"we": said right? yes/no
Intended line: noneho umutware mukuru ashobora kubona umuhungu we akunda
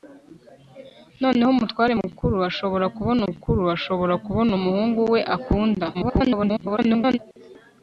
yes